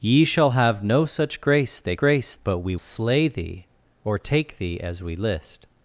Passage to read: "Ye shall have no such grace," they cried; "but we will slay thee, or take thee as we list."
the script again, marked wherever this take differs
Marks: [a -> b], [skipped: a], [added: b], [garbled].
"Ye shall have no such grace," they [cried; -> grace] "but we [skipped: will] slay thee, or take thee as we list."